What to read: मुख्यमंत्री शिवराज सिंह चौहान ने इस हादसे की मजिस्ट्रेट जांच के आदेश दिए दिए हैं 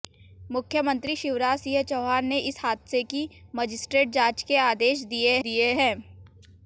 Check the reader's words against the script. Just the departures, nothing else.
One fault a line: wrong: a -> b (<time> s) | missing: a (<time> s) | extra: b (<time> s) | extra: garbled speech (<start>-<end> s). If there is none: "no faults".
no faults